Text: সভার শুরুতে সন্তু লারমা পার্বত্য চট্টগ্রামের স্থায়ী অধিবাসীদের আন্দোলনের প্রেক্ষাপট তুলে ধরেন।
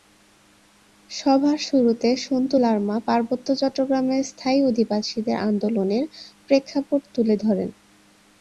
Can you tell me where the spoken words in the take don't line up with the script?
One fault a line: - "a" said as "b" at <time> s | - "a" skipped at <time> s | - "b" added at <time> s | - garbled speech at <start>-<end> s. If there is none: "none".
none